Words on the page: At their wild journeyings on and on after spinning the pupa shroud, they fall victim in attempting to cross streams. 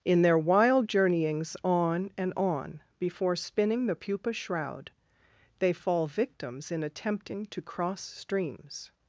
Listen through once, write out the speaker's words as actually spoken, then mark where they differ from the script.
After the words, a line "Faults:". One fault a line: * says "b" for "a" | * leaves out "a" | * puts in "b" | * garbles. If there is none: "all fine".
In their wild journeyings on and on before spinning the pupa shroud, they fall victims in attempting to cross streams.
Faults:
* says "In" for "At"
* says "before" for "after"
* says "victims" for "victim"